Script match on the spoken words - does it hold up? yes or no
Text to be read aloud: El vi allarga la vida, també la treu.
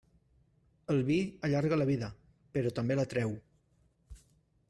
no